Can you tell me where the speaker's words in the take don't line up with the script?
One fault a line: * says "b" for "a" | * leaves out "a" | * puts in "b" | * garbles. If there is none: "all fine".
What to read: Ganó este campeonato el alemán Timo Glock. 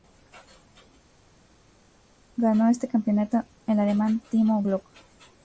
all fine